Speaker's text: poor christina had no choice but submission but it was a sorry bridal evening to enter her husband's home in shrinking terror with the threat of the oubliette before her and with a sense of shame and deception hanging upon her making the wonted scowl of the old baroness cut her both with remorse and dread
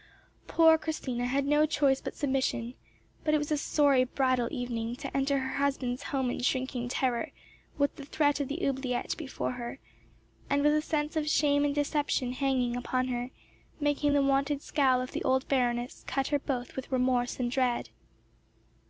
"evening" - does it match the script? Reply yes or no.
yes